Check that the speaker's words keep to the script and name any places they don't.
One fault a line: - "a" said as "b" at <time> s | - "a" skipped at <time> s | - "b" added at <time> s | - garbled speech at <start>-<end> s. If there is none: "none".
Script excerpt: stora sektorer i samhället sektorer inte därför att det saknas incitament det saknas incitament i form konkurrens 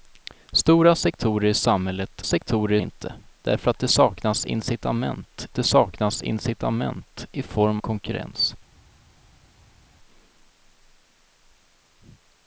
none